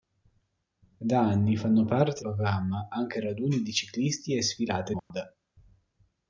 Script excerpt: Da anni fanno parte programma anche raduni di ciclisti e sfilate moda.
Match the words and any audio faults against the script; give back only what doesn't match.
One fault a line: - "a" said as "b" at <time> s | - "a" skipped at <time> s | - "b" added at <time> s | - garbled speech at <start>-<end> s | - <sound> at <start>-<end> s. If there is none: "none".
- dropout at 5.0-5.1 s